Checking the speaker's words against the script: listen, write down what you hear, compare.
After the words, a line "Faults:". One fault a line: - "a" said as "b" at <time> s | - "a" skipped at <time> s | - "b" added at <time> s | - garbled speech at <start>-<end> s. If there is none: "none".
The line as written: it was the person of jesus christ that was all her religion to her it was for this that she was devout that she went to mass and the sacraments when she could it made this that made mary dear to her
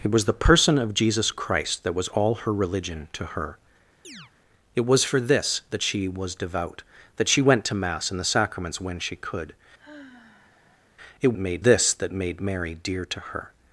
it was the person of jesus christ that was all her religion to her it was for this that she was devout that she went to mass and the sacraments when she could it made this that made mary dear to her
Faults:
none